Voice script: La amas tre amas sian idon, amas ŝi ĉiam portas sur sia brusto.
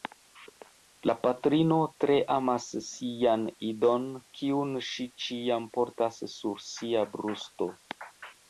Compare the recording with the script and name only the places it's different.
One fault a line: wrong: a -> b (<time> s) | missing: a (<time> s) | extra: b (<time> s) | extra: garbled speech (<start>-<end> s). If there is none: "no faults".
wrong: amas -> patrino (1.2 s)
wrong: amas -> kiun (4.4 s)